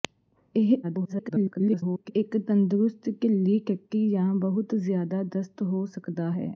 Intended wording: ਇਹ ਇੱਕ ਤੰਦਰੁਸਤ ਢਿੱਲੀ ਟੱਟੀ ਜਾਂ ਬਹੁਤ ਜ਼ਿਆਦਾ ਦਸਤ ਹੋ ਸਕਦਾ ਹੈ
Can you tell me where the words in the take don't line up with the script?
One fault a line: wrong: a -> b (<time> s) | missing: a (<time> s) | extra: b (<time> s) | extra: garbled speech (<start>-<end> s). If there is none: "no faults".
extra: garbled speech (0.8-2.1 s)